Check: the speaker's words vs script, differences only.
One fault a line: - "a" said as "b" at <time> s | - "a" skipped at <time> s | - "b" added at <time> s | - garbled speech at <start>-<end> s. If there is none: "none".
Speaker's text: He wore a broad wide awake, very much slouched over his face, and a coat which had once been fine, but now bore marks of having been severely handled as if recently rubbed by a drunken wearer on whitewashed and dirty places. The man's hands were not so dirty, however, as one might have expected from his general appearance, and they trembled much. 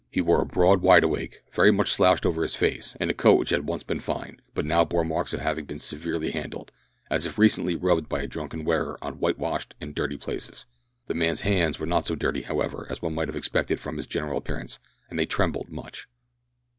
none